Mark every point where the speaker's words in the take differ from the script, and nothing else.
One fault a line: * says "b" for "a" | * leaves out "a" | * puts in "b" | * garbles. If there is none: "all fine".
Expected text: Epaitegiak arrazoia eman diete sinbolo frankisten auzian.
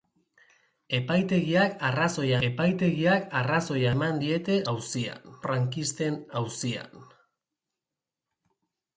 * puts in "epaitegiak arrazoia"
* says "auzian" for "sinbolo"